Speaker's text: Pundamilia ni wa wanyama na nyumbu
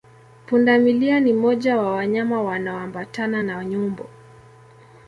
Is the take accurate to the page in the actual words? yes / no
no